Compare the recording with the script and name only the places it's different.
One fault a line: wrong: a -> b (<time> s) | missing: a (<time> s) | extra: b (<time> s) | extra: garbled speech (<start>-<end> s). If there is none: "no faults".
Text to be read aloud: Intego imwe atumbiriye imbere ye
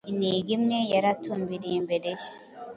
extra: yari (0.9 s)